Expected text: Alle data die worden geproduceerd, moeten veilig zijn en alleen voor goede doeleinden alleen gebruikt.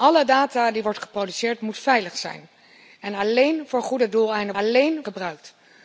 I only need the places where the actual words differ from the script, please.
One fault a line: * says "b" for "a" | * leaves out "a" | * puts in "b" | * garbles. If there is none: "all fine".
all fine